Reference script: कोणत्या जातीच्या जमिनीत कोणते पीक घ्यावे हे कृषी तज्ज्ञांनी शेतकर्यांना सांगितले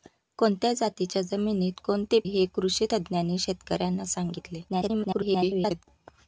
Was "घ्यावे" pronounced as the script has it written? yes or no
no